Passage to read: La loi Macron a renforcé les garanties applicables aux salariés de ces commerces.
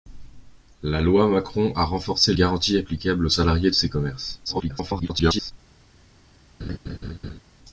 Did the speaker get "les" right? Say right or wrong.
wrong